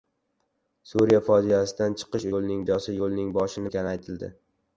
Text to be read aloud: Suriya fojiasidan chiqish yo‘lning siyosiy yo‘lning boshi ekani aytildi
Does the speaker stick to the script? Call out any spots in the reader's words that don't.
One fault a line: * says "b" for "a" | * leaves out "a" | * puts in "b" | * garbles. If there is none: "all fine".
all fine